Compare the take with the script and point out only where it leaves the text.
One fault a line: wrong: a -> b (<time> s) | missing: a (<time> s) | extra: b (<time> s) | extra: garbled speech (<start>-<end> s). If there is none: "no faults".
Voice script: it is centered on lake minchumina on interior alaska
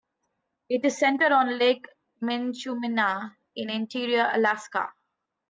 wrong: on -> in (3.5 s)